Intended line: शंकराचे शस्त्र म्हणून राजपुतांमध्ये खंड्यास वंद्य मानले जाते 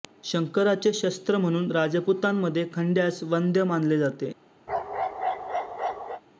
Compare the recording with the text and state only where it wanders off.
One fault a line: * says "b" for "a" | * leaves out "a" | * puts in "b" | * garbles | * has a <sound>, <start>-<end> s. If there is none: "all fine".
* has a bark, 4.7-6.2 s